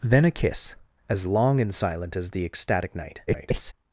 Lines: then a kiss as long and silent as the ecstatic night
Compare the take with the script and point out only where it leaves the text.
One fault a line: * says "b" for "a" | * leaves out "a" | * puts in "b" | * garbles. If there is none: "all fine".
* garbles